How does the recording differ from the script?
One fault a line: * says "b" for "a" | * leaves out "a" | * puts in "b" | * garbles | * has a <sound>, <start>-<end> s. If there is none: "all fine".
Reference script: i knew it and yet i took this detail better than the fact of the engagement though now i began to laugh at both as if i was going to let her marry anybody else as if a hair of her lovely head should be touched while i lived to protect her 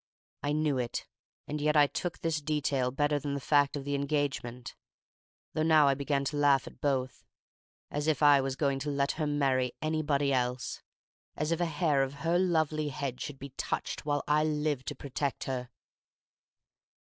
all fine